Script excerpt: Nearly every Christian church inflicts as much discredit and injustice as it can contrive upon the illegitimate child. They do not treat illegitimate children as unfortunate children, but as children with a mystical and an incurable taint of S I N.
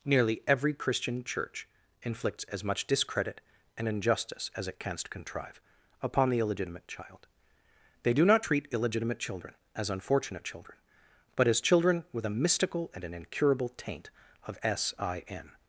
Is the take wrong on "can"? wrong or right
wrong